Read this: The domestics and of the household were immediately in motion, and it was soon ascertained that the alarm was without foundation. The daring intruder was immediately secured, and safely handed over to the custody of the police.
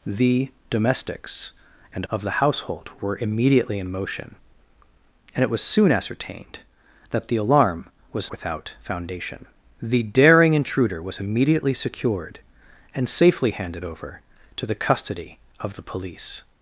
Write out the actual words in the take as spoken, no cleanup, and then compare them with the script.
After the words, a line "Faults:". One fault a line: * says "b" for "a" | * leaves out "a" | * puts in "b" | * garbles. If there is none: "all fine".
The domestics and of the household were immediately in motion, and it was soon ascertained that the alarm was without foundation. The daring intruder was immediately secured, and safely handed over to the custody of the police.
Faults:
all fine